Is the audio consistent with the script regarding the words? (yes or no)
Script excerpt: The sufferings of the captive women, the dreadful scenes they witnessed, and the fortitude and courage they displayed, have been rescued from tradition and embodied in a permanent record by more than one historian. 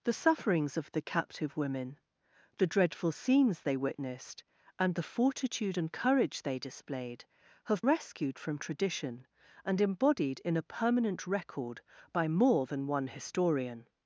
no